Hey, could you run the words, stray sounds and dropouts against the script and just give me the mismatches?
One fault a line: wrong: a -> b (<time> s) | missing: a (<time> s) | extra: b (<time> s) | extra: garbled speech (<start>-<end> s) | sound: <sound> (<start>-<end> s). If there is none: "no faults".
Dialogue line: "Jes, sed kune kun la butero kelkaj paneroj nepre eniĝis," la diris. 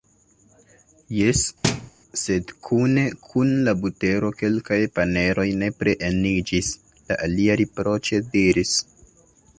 sound: thud (1.6-1.9 s)
extra: alia riproĉe (7.3 s)